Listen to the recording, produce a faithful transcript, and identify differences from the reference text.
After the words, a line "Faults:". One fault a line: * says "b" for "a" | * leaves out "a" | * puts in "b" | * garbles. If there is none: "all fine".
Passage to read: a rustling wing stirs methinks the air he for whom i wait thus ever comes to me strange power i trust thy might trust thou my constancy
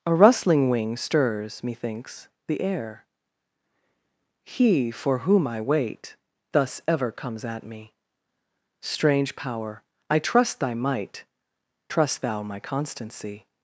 a rustling wing stirs methinks the air he for whom i wait thus ever comes at me strange power i trust thy might trust thou my constancy
Faults:
* says "at" for "to"